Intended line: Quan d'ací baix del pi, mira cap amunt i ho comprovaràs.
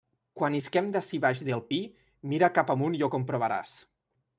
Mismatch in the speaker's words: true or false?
true